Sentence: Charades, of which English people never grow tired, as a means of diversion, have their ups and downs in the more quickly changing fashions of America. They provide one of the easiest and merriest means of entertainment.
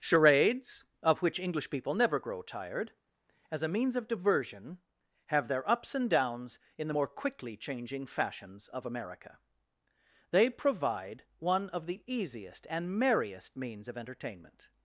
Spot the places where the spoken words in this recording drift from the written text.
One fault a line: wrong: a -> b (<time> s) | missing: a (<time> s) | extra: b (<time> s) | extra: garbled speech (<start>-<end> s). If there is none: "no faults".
no faults